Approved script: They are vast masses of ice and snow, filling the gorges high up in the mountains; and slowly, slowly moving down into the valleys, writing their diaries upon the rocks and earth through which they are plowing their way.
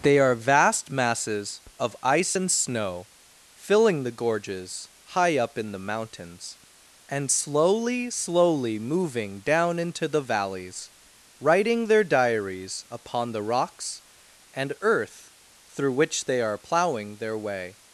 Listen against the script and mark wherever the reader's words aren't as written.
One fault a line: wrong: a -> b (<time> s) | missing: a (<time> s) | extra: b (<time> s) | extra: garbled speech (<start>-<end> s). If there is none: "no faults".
no faults